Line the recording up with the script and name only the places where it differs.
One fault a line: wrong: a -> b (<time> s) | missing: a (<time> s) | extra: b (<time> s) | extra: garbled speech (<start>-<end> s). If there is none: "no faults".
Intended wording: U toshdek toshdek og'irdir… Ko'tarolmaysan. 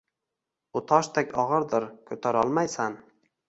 missing: toshdek (1.4 s)